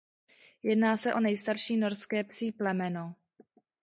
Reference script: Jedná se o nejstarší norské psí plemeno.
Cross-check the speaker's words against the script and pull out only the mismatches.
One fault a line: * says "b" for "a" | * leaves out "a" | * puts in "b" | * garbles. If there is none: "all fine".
all fine